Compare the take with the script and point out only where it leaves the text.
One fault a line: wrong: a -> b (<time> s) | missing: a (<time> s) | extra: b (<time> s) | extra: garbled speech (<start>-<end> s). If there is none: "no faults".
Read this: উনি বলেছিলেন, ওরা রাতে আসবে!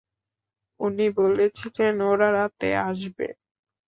no faults